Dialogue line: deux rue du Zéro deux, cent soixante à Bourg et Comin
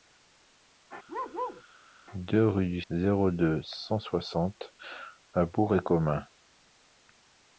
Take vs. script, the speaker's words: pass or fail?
pass